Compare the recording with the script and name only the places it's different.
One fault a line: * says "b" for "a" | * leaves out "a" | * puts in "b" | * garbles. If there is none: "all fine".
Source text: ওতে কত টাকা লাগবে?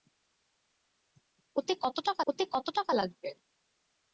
* puts in "ওতে কত টাকা"